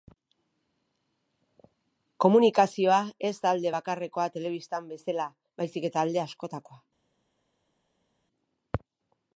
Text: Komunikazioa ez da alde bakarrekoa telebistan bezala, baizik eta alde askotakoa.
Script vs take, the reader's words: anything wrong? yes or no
no